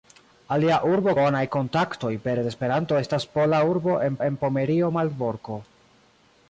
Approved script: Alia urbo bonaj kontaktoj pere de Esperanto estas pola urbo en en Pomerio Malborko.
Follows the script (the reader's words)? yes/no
yes